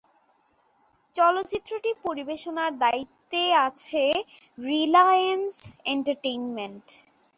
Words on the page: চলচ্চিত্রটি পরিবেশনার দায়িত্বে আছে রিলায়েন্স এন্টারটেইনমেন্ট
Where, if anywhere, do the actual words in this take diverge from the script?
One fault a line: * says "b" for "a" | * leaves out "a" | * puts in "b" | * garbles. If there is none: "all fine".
all fine